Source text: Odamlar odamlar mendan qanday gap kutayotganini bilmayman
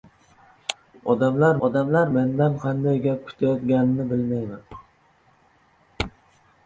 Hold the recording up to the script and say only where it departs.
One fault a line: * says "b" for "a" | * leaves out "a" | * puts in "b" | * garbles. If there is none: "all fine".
all fine